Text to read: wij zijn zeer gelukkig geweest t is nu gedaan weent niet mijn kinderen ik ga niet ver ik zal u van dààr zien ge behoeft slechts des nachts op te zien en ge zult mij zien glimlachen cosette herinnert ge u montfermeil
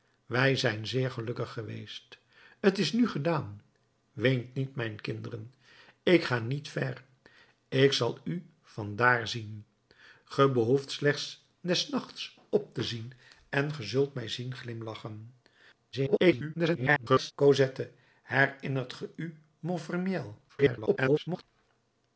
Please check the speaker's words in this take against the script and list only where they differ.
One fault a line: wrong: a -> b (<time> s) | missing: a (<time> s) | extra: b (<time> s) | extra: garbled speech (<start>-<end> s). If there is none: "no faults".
extra: garbled speech (15.9-17.3 s)
extra: garbled speech (20.5-21.4 s)